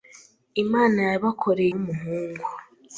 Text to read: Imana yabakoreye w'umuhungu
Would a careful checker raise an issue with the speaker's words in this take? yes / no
no